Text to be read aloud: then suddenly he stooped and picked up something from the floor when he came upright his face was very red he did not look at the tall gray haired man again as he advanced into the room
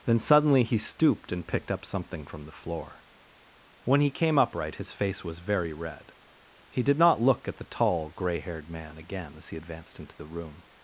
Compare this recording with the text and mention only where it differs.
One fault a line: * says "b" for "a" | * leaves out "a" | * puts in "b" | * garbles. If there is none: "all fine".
all fine